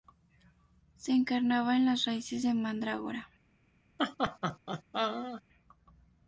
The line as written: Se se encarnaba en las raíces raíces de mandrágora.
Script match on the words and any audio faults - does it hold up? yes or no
no